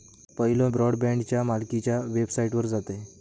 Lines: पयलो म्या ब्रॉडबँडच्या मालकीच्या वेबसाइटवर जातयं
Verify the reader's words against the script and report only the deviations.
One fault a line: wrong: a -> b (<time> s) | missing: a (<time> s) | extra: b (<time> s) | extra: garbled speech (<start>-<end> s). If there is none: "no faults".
missing: म्या (0.7 s)